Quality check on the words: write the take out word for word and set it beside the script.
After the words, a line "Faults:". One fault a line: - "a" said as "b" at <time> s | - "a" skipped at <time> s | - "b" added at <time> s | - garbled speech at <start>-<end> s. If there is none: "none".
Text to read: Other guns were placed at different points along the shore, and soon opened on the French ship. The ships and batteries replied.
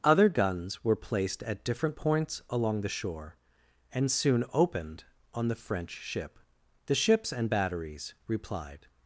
Other guns were placed at different points along the shore, and soon opened on the French ship. The ships and batteries replied.
Faults:
none